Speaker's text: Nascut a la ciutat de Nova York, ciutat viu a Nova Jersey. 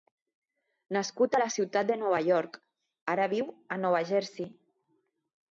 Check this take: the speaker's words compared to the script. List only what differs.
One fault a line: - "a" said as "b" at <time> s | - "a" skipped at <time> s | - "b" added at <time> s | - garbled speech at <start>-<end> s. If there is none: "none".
- "ciutat" said as "ara" at 3.2 s